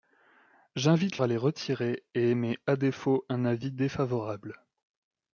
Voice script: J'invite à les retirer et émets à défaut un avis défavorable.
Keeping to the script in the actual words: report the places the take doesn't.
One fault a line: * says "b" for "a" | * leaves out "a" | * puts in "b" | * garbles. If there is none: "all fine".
all fine